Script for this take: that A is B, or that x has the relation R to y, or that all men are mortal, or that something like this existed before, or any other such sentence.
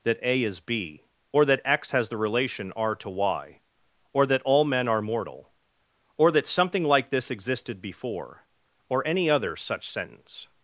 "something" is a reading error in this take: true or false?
false